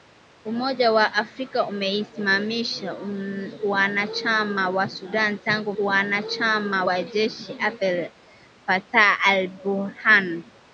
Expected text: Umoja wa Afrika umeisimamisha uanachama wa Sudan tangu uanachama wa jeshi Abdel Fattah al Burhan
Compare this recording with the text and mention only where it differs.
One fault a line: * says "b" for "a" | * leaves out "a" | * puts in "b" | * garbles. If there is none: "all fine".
all fine